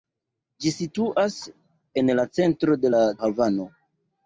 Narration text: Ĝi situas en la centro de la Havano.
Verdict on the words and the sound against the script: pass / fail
pass